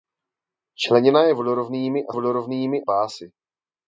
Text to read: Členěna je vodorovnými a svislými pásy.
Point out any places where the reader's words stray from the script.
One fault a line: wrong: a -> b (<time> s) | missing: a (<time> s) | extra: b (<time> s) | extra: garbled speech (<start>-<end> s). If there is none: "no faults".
wrong: svislými -> vodorovnými (2.1 s)